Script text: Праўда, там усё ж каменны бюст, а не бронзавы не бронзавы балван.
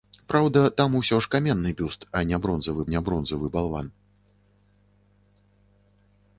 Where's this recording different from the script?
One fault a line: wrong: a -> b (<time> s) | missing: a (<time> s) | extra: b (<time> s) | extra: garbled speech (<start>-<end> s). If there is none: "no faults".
no faults